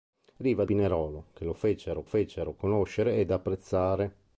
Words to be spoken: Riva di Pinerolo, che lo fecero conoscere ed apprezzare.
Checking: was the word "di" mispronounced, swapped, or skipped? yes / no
yes